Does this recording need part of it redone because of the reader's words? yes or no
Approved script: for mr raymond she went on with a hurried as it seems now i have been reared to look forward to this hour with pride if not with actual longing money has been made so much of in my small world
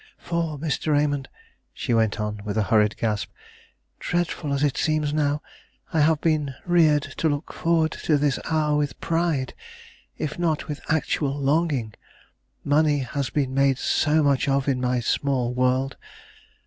yes